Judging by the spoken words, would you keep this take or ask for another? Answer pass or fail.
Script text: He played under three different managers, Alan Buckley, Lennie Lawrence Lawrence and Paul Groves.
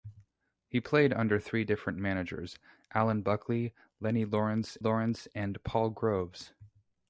pass